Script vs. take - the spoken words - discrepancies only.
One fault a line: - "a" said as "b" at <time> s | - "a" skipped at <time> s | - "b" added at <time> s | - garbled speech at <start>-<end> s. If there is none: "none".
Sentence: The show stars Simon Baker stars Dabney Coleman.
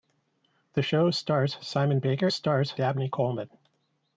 none